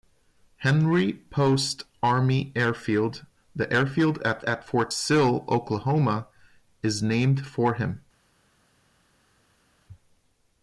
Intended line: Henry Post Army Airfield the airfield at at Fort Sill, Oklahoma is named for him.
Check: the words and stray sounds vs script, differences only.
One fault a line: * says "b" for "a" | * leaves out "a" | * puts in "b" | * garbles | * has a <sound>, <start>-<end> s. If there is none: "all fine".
all fine